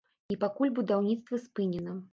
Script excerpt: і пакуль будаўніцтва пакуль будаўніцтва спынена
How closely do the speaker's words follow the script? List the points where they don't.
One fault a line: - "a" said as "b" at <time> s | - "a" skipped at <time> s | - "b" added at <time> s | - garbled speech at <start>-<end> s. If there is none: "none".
- "пакуль будаўніцтва" skipped at 1.4 s